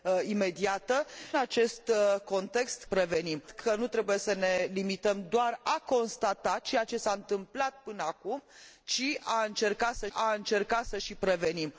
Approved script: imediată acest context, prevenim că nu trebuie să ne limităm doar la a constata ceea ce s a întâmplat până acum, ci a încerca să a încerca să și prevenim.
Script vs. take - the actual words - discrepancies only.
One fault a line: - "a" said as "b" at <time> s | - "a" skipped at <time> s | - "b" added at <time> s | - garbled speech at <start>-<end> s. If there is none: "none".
none